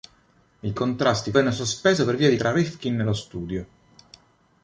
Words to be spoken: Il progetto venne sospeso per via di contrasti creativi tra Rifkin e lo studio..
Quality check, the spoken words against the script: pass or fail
fail